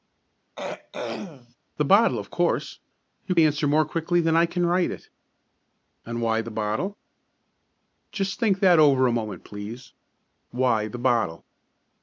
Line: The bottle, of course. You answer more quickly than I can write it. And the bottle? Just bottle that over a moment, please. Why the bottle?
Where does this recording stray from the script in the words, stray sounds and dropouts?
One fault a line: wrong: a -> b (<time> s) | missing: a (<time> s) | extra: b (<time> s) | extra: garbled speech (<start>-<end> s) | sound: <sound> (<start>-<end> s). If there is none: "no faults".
sound: throat clearing (0.6-1.6 s)
extra: why (6.2 s)
wrong: bottle -> think (8.4 s)